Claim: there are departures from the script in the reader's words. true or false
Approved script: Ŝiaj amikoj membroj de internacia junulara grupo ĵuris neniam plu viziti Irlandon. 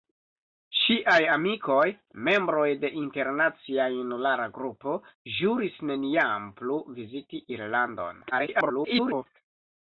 true